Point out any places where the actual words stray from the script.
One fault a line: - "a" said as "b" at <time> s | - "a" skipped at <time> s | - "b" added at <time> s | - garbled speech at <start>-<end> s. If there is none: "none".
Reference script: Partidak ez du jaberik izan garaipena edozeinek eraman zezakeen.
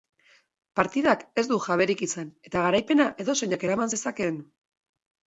- "eta" added at 2.5 s